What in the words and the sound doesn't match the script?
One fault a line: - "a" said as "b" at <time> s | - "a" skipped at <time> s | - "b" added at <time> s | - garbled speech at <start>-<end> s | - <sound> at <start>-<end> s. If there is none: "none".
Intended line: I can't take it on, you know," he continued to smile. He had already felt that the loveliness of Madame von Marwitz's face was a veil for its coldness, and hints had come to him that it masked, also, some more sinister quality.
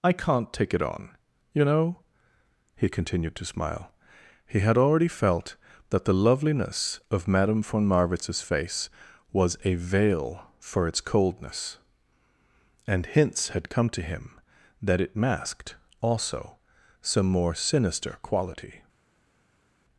none